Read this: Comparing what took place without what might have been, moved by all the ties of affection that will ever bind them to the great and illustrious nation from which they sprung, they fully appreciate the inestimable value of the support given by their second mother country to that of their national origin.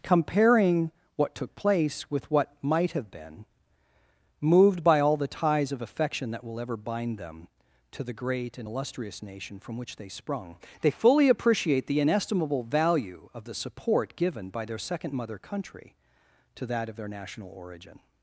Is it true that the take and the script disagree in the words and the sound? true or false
true